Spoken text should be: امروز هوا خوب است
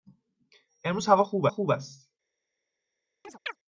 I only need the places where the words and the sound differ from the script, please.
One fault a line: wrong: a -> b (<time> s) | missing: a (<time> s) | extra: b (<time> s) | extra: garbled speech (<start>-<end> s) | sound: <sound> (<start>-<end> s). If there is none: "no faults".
extra: خوب (1.5 s)
sound: chirp (3.2-3.6 s)